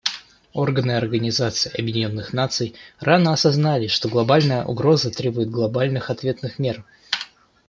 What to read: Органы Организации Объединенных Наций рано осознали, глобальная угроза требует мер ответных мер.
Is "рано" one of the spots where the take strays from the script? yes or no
no